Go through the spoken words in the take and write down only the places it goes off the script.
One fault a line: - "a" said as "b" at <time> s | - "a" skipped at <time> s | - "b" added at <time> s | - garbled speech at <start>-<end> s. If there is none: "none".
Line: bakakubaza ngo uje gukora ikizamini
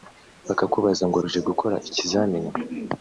none